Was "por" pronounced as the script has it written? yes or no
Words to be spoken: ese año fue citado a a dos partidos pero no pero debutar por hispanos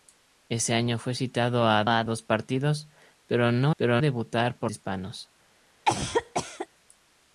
yes